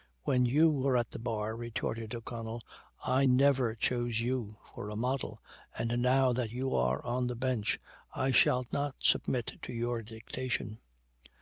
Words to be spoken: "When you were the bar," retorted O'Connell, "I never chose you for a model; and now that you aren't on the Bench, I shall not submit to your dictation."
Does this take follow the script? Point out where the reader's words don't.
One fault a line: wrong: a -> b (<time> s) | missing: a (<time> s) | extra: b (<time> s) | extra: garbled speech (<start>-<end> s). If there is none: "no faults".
extra: at (1.0 s)
wrong: aren't -> are (6.7 s)